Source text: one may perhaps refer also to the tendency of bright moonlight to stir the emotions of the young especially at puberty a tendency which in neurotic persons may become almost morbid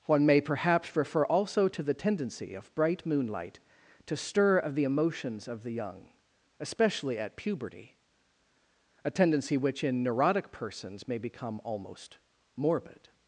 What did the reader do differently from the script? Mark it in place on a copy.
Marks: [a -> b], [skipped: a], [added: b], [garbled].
one may perhaps refer also to the tendency of bright moonlight to stir [added: of] the emotions of the young especially at puberty a tendency which in neurotic persons may become almost morbid